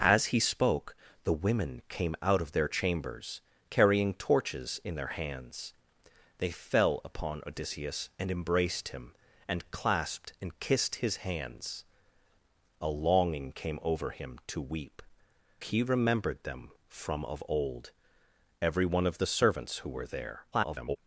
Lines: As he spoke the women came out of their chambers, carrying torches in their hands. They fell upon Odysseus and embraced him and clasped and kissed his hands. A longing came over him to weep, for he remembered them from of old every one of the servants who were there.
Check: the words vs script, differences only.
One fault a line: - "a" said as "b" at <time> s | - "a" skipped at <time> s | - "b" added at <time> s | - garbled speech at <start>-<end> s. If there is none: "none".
- "for" skipped at 15.0 s
- garbled speech at 20.5-21.0 s